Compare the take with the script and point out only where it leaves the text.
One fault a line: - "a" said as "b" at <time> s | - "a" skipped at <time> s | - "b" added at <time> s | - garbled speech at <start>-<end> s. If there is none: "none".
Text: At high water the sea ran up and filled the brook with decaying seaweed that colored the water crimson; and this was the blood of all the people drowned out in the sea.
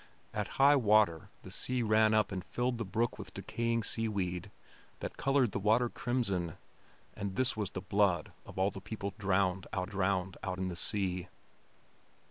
- "drowned out" added at 9.9 s